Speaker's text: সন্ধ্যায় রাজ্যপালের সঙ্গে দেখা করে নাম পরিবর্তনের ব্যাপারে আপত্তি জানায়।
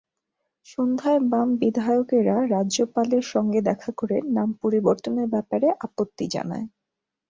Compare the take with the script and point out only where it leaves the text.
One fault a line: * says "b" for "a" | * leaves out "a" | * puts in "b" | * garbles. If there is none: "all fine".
* puts in "বাম বিধায়কেরা"